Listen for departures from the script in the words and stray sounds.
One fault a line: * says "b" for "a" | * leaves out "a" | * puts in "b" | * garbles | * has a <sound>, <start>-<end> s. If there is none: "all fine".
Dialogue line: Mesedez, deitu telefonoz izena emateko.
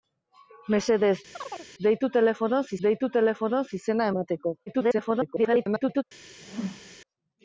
* has a chirp, 1.3-1.7 s
* puts in "deitu telefonoz"
* garbles
* has a whoosh, 6.4-7.0 s